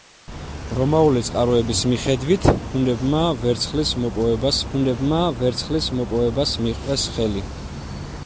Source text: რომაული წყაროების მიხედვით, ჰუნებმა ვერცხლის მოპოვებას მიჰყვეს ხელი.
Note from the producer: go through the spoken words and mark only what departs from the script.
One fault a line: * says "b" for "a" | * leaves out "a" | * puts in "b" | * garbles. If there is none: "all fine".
* puts in "ჰუნებმა ვერცხლის მოპოვებას"